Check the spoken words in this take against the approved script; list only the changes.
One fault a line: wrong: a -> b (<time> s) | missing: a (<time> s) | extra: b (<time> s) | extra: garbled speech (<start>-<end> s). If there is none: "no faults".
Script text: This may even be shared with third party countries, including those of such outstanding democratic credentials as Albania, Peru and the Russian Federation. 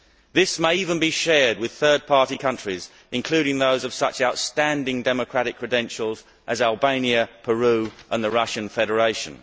no faults